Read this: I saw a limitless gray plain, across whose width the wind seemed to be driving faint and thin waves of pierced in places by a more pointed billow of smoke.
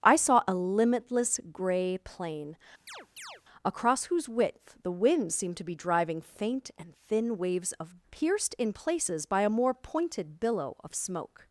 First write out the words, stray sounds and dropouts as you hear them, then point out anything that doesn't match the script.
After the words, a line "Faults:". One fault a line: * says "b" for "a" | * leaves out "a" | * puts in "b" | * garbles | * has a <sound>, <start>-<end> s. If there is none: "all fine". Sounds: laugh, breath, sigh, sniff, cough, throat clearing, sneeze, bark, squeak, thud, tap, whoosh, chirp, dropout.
I saw a limitless gray plain, across whose width the wind seemed to be driving faint and thin waves of pierced in places by a more pointed billow of smoke.
Faults:
* has a chirp, 2.9-3.4 s